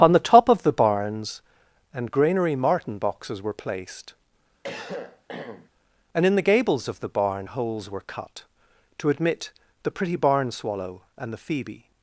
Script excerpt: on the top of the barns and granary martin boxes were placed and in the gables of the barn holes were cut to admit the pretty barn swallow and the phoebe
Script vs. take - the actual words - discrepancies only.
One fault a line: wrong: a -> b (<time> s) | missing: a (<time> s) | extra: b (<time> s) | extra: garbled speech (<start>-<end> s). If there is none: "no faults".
no faults